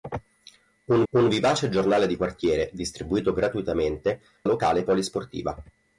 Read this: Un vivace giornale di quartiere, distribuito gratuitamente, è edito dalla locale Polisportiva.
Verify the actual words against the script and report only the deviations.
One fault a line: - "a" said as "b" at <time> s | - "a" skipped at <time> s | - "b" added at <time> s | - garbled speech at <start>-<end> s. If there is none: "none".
- "un" added at 1.1 s
- "è edito dalla" skipped at 4.2 s